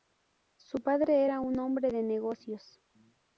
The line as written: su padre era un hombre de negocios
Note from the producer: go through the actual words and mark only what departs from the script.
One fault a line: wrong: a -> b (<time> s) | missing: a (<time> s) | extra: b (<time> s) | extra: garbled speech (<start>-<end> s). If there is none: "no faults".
no faults